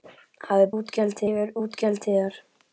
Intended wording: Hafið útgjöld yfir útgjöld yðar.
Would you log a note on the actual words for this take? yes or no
no